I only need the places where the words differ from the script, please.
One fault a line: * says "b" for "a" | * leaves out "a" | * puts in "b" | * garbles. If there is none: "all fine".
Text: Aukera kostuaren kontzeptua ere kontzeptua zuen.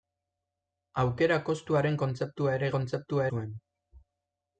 all fine